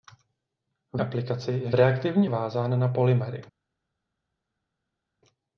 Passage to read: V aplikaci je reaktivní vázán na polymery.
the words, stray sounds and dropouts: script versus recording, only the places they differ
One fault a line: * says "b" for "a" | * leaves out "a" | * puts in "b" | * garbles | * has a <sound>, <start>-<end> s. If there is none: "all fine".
all fine